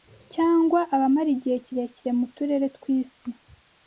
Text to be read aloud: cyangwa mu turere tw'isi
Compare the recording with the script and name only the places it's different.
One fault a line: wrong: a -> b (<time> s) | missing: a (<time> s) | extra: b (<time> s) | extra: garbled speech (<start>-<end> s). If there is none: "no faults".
extra: abamara igihe kirekire (0.9 s)